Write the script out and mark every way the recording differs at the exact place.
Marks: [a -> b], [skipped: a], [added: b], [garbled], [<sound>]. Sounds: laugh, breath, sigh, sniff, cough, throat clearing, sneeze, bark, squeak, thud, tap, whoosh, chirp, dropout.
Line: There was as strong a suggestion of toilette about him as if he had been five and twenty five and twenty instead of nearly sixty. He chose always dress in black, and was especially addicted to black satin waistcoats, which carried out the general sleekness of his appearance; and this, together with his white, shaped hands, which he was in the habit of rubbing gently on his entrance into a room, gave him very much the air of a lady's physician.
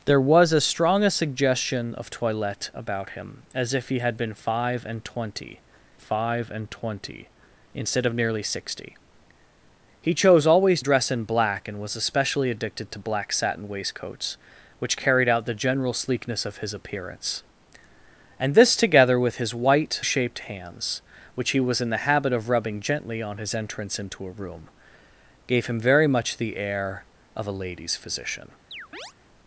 There was as strong a suggestion of toilette about him as if he had been five and twenty five and twenty instead of nearly sixty. He chose always dress in black, and was especially addicted to black satin waistcoats, which carried out the general sleekness of his appearance; and this, together with his white, shaped hands, which he was in the habit of rubbing gently on his entrance into a room, gave him very much the air of a lady's physician. [chirp]